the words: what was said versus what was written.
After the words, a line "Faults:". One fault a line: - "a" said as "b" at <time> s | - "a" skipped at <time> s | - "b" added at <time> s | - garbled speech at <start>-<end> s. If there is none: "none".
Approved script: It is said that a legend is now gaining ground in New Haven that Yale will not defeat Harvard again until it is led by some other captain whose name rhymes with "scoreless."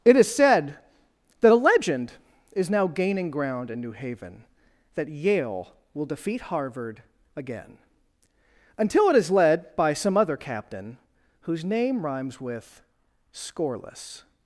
It is said that a legend is now gaining ground in New Haven that Yale will defeat Harvard again until it is led by some other captain whose name rhymes with "scoreless."
Faults:
- "not" skipped at 6.0 s